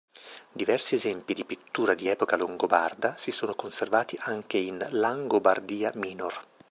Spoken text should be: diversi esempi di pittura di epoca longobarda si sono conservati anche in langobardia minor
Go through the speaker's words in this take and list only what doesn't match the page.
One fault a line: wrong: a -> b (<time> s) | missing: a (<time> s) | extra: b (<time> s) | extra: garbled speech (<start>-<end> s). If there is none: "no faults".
no faults